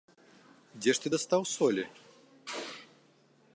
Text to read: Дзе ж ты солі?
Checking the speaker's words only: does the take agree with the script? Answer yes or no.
no